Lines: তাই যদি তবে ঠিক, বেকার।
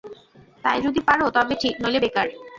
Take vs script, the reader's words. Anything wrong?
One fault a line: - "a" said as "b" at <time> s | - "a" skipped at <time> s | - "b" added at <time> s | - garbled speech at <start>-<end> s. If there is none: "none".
- "পার" added at 1.1 s
- "নইলে" added at 1.8 s